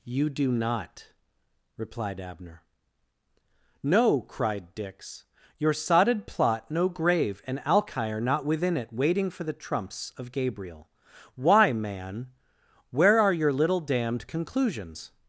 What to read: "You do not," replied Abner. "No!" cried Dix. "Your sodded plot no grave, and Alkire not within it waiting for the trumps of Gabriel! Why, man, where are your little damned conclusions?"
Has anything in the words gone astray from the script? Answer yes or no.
no